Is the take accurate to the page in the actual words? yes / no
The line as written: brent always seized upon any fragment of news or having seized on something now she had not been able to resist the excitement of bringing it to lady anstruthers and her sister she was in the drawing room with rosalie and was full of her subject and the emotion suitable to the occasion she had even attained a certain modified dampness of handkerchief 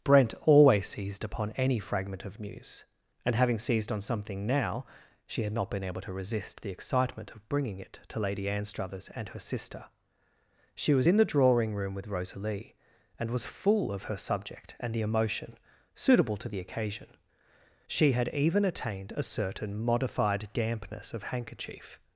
no